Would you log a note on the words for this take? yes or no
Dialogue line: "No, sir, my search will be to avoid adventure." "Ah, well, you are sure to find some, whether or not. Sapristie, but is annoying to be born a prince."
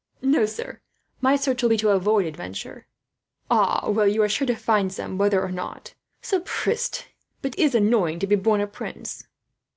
no